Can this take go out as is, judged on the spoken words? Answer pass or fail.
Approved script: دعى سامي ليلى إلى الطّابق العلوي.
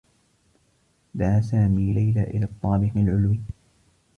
pass